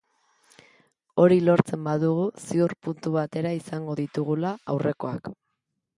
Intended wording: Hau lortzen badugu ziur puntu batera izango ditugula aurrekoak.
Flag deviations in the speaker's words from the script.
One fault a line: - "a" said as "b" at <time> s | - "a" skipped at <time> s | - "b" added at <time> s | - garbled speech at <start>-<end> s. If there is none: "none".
- "Hau" said as "Hori" at 1.2 s